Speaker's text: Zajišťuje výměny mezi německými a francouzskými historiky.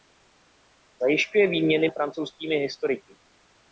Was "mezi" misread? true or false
true